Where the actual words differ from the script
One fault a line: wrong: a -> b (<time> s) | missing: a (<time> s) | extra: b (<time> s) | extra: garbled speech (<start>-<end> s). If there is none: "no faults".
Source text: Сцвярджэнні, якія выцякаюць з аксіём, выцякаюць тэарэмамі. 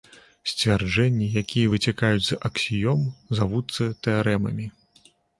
wrong: выцякаюць -> завуцца (3.4 s)